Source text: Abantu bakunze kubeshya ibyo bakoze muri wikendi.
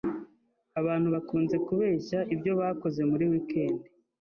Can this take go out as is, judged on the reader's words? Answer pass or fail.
pass